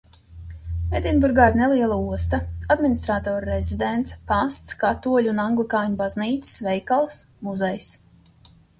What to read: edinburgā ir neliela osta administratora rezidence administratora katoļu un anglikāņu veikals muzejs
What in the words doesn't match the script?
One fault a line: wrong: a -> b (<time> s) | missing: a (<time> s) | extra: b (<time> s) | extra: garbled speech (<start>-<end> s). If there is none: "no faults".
wrong: administratora -> pasts (4.3 s)
extra: baznīcas (6.0 s)